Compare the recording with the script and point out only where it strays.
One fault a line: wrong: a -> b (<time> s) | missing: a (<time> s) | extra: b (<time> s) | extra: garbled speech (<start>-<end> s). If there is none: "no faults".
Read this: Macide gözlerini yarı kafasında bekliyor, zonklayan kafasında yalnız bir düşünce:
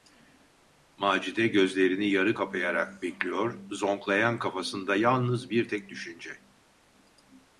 wrong: kafasında -> kapayarak (2.3 s)
extra: tek (5.7 s)